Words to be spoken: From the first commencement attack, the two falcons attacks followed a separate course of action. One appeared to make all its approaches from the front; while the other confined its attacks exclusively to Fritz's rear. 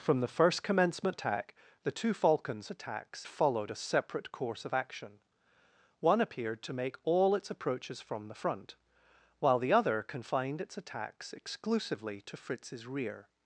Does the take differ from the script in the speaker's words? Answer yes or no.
no